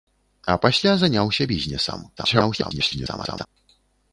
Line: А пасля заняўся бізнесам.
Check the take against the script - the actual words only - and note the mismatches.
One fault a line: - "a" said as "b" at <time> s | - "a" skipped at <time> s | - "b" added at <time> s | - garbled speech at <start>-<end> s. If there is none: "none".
- garbled speech at 2.2-3.5 s